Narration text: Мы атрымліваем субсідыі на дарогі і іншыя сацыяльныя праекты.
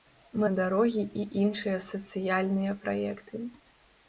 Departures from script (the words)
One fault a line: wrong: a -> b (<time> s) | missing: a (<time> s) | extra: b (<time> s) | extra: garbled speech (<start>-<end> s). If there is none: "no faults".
missing: атрымліваем субсідыі (0.5 s)